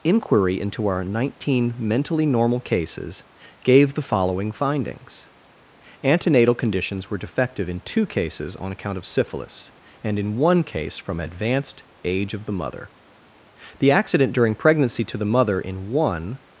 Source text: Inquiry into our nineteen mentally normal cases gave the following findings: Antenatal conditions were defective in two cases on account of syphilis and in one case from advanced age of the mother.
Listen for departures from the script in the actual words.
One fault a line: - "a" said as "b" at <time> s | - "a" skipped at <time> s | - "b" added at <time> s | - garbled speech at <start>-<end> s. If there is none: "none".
- "The accident during pregnancy to the mother in one" added at 13.8 s